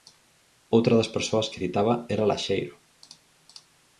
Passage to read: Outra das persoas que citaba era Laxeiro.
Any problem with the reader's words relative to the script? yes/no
no